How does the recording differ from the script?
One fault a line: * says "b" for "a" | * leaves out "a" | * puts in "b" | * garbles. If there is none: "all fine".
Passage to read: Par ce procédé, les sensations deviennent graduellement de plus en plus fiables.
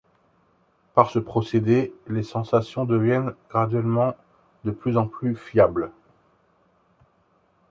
all fine